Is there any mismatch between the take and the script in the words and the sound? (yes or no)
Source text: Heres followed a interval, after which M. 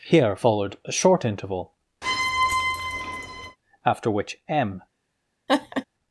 yes